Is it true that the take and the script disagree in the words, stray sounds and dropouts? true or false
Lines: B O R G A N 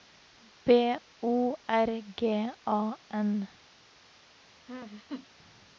true